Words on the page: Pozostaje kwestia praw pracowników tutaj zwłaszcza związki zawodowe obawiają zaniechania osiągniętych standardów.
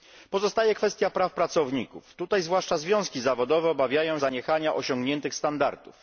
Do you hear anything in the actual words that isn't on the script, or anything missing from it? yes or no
no